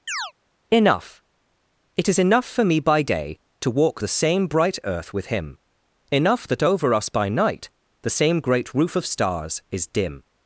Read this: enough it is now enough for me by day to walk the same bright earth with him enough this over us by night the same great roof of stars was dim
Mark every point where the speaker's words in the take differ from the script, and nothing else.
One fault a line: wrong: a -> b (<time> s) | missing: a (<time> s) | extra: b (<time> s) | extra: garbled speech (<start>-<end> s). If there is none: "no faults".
missing: now (2.2 s)
wrong: this -> that (6.5 s)
wrong: was -> is (9.7 s)